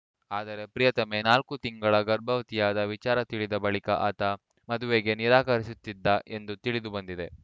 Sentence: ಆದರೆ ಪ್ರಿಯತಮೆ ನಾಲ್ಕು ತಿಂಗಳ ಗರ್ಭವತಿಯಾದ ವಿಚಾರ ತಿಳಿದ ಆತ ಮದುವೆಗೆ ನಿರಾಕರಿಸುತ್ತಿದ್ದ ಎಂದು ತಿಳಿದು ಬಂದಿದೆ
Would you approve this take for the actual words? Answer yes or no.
no